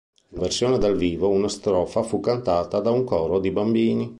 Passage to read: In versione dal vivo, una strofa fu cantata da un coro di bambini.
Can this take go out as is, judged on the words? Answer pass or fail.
pass